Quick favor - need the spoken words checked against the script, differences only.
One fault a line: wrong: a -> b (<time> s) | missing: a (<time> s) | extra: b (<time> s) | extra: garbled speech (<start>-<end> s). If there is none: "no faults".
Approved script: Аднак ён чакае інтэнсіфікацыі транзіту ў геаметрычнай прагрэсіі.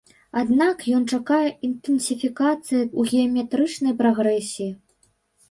missing: транзіту (2.9 s)